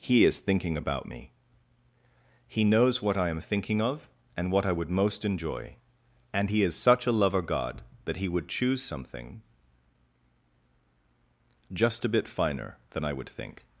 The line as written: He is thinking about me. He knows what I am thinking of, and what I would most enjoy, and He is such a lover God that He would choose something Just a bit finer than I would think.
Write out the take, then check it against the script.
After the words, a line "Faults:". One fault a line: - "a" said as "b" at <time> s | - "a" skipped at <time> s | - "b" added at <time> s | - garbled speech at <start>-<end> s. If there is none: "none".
He is thinking about me. He knows what I am thinking of, and what I would most enjoy, and He is such a lover God that He would choose something Just a bit finer than I would think.
Faults:
none